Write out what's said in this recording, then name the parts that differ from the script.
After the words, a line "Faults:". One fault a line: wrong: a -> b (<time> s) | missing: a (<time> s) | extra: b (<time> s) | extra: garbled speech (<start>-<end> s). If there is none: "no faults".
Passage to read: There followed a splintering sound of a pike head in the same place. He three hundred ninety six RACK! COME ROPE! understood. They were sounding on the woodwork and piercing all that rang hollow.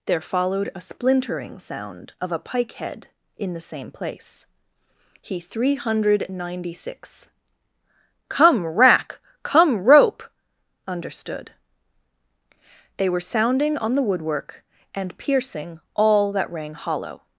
There followed a splintering sound of a pike head in the same place. He three hundred ninety six COME RACK! COME ROPE! understood. They were sounding on the woodwork and piercing all that rang hollow.
Faults:
extra: COME (8.3 s)